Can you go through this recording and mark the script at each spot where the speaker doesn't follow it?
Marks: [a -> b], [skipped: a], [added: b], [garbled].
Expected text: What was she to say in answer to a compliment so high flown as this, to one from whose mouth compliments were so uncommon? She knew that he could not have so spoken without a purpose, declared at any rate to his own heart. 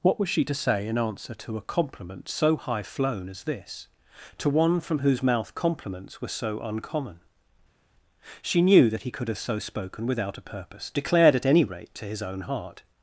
What was she to say in answer to a compliment so high flown as this, to one from whose mouth compliments were so uncommon? She knew that he could [skipped: not] have so spoken without a purpose, declared at any rate to his own heart.